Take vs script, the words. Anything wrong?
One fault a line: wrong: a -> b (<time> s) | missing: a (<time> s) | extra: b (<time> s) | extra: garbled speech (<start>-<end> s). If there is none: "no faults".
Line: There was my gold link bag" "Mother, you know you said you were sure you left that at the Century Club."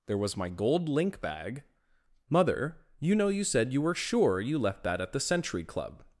no faults